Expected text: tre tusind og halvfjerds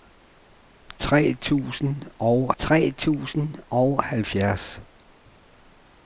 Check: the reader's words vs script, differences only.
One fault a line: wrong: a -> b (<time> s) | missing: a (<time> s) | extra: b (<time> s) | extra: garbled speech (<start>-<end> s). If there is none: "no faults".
extra: tre tusind og (2.6 s)